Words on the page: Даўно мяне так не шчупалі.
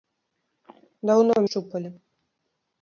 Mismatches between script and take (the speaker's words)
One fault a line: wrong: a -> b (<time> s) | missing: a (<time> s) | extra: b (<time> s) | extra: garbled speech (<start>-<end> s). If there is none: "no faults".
missing: мяне так не (1.4 s)